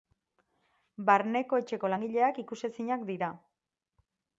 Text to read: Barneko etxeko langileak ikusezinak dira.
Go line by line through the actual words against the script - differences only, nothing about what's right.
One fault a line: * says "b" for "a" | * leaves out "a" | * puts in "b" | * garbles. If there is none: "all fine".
all fine